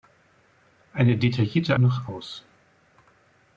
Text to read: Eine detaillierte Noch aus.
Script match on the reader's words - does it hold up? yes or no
yes